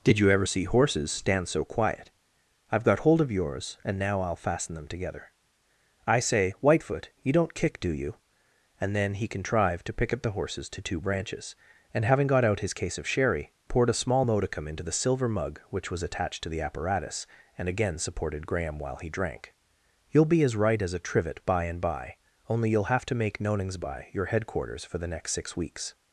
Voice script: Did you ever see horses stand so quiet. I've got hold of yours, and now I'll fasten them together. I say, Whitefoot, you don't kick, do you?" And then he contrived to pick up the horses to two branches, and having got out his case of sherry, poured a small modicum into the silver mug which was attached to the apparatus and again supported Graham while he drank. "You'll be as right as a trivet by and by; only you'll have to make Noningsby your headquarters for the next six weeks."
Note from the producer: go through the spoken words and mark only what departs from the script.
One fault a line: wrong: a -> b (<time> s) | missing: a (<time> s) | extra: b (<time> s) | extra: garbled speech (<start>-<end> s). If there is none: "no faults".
no faults